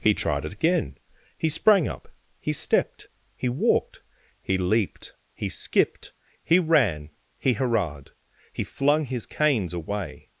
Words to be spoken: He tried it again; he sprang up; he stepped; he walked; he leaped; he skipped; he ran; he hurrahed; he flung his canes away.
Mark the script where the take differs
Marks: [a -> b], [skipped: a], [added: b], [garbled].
He tried it again; he sprang up; he stepped; he walked; he leaped; he skipped; he ran; he hurrahed; he flung his canes away.